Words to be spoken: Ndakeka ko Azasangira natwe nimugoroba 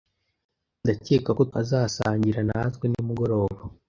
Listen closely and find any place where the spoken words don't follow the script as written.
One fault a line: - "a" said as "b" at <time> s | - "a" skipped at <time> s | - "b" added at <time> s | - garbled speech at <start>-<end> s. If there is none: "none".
none